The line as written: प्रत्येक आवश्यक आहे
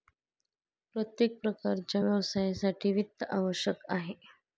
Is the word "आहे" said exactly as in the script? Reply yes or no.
yes